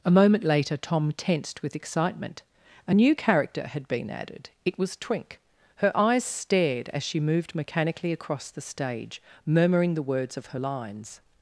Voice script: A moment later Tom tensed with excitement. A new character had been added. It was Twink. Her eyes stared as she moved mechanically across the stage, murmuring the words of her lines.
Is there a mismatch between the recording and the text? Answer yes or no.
no